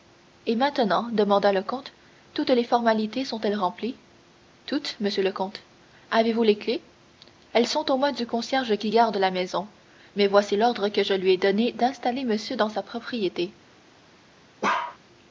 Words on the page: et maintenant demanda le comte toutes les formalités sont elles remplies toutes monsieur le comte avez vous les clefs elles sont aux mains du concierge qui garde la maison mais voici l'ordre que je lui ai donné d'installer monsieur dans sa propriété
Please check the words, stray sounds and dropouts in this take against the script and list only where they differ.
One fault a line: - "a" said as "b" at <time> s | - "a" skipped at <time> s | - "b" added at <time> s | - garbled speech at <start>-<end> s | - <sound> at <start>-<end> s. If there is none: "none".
- bark at 14.6-15.0 s